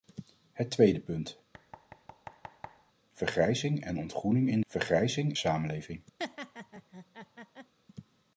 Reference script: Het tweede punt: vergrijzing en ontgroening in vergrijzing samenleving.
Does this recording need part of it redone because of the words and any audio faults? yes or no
yes